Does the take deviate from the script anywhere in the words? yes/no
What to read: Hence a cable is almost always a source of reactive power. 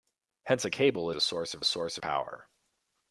yes